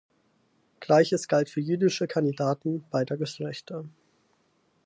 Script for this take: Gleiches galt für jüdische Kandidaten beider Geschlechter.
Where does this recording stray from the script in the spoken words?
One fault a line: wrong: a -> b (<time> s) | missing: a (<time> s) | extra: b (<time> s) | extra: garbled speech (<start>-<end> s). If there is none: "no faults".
no faults